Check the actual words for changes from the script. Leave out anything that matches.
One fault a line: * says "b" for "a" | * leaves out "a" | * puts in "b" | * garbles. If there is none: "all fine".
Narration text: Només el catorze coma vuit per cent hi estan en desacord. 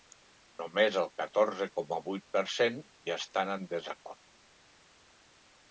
all fine